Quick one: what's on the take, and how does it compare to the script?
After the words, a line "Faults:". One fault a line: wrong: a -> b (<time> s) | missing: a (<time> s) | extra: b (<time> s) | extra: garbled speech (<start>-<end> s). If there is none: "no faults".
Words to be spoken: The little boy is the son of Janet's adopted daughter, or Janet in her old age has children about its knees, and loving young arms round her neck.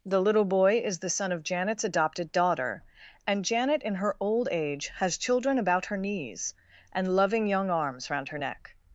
The little boy is the son of Janet's adopted daughter, and Janet in her old age has children about her knees, and loving young arms round her neck.
Faults:
wrong: or -> and (3.3 s)
wrong: its -> her (5.9 s)